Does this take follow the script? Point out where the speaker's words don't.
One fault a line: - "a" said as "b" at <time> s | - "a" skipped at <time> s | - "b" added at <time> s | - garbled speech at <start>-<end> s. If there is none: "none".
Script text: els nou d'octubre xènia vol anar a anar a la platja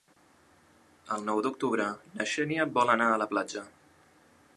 - "els" said as "el" at 1.1 s
- "na" added at 2.1 s
- "anar a" skipped at 3.2 s